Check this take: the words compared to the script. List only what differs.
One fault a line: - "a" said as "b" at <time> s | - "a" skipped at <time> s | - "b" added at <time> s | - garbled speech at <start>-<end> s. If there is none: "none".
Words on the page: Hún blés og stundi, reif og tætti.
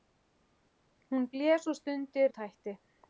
- "reif" skipped at 2.3 s